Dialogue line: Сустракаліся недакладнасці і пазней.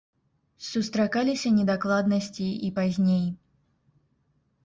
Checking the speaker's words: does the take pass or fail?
pass